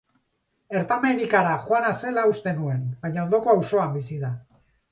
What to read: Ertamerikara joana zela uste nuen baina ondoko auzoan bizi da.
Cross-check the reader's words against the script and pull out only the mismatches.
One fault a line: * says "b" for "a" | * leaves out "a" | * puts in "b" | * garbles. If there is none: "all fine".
all fine